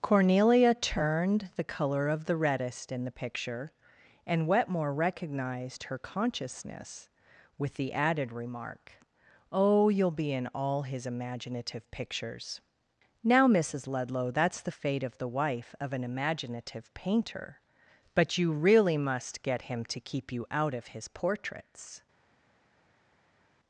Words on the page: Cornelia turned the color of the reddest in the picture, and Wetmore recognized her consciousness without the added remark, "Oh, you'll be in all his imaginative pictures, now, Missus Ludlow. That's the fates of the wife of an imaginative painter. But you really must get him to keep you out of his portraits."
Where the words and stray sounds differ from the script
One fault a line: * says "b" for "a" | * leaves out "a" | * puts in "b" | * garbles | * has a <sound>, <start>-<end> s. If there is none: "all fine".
* says "with" for "without"
* says "fate" for "fates"